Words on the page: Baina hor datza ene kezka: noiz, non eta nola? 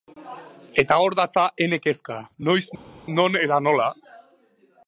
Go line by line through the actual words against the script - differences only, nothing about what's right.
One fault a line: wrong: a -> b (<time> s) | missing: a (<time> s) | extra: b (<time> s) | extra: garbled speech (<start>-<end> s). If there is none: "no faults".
wrong: Baina -> Eta (0.8 s)